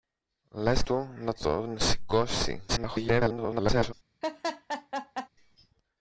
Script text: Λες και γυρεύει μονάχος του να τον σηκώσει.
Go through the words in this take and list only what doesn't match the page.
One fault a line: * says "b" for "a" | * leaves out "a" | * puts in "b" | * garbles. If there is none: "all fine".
* leaves out "και γυρεύει μονάχος"
* garbles